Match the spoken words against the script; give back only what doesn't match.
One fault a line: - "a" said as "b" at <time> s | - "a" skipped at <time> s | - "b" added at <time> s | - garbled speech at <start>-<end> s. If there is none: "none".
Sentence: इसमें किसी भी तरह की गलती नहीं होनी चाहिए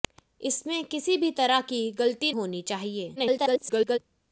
- "नहीं" skipped at 2.3 s
- garbled speech at 3.2-4.0 s